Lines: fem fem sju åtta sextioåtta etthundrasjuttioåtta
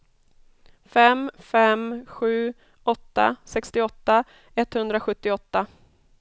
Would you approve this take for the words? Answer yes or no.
yes